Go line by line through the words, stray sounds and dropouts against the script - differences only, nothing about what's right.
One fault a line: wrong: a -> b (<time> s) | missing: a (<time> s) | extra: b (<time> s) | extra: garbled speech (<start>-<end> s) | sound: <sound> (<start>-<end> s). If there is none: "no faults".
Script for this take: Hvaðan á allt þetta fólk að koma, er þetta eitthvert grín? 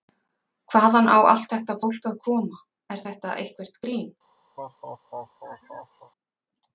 sound: laugh (4.6-6.1 s)